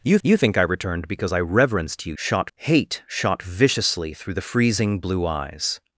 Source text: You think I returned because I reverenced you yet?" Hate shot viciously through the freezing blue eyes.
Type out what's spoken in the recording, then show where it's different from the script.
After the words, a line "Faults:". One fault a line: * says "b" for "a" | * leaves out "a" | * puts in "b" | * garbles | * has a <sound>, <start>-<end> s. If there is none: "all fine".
You you think I returned because I reverenced you shot?" Hate shot viciously through the freezing blue eyes.
Faults:
* puts in "you"
* says "shot" for "yet"